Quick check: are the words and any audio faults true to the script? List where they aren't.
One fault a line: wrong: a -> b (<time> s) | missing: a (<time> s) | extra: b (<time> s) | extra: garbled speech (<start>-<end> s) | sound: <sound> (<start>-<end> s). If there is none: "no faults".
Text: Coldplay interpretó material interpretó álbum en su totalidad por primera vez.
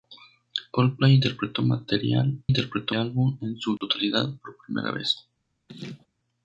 sound: dropout (3.8-3.8 s)
sound: laugh (5.7-6.1 s)